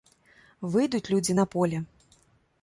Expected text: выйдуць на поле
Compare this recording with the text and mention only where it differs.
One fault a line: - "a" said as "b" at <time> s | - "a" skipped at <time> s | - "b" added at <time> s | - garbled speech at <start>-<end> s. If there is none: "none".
- "людзі" added at 1.1 s